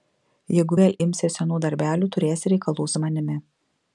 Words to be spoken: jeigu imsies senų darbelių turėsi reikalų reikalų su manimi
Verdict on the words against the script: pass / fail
fail